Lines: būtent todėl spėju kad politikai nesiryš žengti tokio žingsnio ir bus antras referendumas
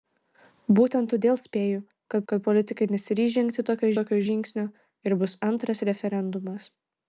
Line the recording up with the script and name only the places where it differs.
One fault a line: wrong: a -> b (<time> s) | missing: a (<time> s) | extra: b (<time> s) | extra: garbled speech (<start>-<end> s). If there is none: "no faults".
extra: kad (2.3 s)
extra: tokio (4.0 s)